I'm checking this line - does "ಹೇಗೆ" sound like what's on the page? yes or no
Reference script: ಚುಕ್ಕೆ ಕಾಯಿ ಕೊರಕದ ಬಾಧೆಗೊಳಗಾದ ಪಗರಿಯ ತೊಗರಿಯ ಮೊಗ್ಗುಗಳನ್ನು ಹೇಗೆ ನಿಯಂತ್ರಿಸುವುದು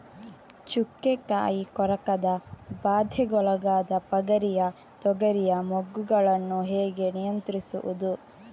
yes